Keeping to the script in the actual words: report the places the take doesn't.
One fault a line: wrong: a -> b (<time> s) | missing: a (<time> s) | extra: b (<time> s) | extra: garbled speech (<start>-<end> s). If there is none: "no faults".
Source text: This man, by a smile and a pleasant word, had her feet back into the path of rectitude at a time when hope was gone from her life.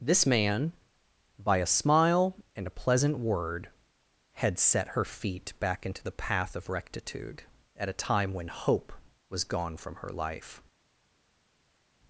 extra: set (4.6 s)